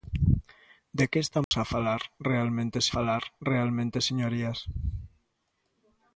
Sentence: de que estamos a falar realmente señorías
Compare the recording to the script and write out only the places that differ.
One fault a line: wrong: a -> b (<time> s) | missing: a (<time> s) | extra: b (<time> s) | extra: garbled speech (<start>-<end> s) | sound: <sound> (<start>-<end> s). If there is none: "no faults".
sound: dropout (1.4-1.5 s)
extra: falar realmente (3.0 s)